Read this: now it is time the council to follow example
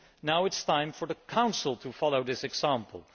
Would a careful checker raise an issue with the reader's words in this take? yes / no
yes